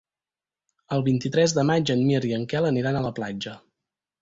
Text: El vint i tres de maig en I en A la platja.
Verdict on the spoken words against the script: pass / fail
fail